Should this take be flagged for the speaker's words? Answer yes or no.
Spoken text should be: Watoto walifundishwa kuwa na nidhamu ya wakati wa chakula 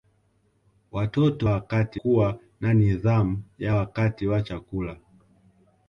yes